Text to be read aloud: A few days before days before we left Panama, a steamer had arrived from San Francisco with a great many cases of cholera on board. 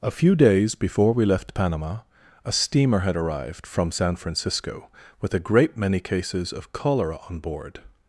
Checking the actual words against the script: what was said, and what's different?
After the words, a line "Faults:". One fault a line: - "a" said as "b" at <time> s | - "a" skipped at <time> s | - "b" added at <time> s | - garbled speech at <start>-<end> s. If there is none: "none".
A few days before we left Panama, a steamer had arrived from San Francisco with a great many cases of cholera on board.
Faults:
- "days before" skipped at 1.1 s